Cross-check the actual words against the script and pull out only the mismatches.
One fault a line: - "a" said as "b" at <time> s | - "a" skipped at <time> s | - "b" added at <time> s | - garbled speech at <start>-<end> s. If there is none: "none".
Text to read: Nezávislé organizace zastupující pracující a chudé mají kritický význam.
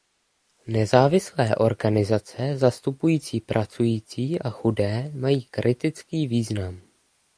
none